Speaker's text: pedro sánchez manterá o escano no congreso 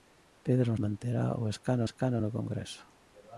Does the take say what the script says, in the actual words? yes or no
no